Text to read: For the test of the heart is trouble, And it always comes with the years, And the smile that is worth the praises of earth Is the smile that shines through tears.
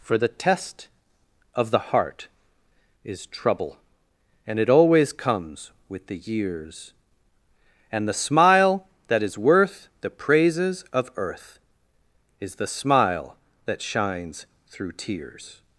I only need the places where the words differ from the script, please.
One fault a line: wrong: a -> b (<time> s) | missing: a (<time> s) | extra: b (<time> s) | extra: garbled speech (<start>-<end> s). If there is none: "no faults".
no faults